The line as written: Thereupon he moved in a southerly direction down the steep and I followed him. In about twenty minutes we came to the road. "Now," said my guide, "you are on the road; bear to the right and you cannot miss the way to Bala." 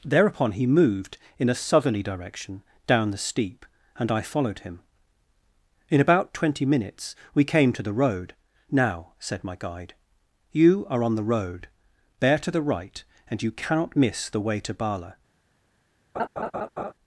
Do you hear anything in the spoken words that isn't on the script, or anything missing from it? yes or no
no